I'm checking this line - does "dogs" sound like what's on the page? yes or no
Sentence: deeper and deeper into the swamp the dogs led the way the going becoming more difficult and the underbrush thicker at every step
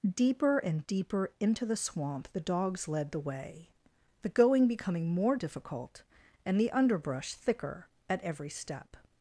yes